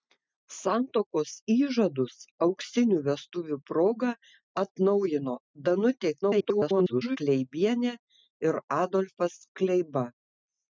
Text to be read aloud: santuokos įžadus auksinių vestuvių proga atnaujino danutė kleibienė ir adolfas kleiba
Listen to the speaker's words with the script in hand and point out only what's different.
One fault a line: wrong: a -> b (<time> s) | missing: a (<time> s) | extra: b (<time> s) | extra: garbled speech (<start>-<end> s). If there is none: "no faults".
extra: garbled speech (6.2-7.2 s)